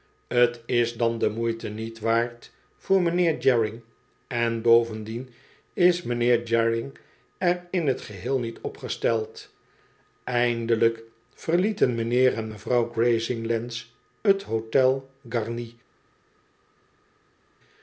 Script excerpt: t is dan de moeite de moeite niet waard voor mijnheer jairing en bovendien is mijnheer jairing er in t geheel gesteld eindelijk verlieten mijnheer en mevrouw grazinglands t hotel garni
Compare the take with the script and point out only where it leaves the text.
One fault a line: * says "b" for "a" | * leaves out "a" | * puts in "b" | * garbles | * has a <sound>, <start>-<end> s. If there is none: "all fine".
* leaves out "de moeite"
* puts in "niet op"